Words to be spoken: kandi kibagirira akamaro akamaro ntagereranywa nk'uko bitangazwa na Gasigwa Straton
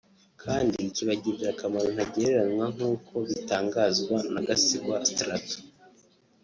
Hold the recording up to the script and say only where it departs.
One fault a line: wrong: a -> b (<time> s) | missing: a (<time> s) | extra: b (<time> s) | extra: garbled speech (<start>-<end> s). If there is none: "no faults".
missing: akamaro (1.9 s)